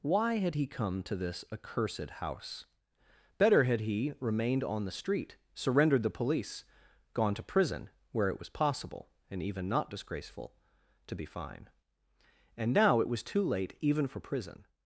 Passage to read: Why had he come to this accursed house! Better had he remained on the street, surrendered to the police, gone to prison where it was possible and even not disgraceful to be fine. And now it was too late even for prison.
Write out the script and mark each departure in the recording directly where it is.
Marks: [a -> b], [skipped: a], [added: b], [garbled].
Why had he come to this accursed house! Better had he remained on the street, surrendered [skipped: to] the police, gone to prison where it was possible and even not disgraceful to be fine. And now it was too late even for prison.